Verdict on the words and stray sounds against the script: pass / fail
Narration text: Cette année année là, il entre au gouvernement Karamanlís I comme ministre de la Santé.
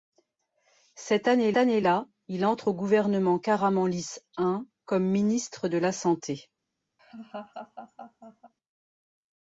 fail